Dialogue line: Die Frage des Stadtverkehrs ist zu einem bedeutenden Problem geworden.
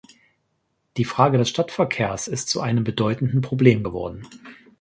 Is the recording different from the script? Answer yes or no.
no